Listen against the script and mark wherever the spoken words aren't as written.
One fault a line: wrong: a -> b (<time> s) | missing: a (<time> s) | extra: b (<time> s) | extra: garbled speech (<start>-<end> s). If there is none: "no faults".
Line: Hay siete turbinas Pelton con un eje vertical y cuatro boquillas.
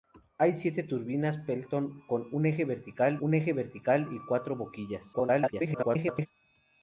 extra: un eje vertical (3.2 s)
extra: garbled speech (5.1-6.3 s)